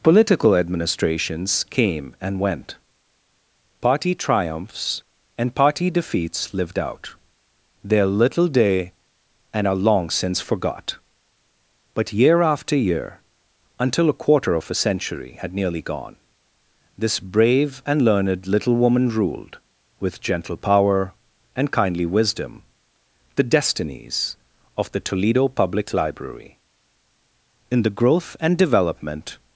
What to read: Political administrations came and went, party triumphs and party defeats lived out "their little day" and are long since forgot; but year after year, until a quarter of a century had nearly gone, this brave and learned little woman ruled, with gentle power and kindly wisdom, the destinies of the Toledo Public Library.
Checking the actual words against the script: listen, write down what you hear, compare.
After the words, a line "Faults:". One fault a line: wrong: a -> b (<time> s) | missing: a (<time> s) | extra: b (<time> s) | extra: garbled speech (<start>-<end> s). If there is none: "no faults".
Political administrations came and went, party triumphs and party defeats lived out "their little day" and are long since forgot; but year after year, until a quarter of a century had nearly gone, this brave and learned little woman ruled, with gentle power and kindly wisdom, the destinies of the Toledo Public Library. In the growth and development
Faults:
extra: In the growth and development (27.7 s)